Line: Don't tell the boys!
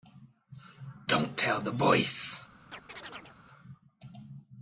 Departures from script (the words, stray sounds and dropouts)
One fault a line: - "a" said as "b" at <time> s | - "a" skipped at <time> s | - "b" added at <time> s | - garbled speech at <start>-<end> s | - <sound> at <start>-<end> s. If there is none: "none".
- chirp at 2.7-3.4 s